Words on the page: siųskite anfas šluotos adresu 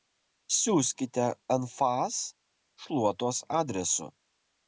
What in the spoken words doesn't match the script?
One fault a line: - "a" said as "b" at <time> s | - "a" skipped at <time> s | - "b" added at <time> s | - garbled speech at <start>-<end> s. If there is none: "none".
none